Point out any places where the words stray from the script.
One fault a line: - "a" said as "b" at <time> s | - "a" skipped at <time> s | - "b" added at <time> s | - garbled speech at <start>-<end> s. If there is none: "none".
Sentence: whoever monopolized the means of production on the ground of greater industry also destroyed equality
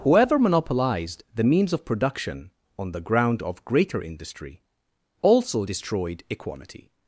none